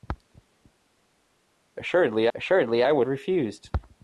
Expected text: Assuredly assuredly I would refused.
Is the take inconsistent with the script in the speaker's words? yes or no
no